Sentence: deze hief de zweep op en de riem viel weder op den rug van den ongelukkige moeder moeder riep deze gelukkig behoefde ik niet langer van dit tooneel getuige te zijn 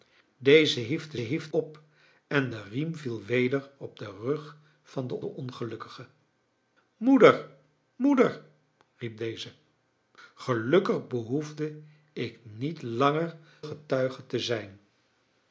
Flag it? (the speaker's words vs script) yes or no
yes